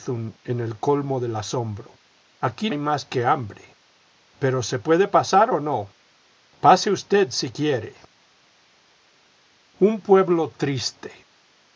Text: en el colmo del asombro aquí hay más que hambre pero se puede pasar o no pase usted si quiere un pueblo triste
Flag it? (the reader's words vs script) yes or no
no